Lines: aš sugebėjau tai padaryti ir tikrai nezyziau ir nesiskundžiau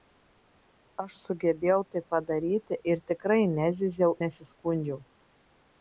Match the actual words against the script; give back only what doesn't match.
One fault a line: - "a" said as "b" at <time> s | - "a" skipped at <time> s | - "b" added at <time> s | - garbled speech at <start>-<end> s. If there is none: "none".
- "ir" skipped at 4.2 s